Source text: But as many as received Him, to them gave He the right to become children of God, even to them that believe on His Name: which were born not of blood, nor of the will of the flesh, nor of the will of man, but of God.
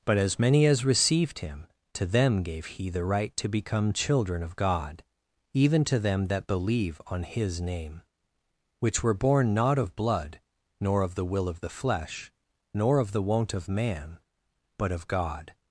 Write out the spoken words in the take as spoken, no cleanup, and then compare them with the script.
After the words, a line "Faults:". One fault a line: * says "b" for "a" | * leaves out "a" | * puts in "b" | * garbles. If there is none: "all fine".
But as many as received Him, to them gave He the right to become children of God, even to them that believe on His Name: which were born not of blood, nor of the will of the flesh, nor of the won't of man, but of God.
Faults:
* says "won't" for "will"